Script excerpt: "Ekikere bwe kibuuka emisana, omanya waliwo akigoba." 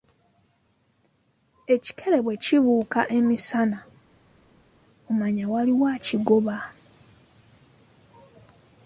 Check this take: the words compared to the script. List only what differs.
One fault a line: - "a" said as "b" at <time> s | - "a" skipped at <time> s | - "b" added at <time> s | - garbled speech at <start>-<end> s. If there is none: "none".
none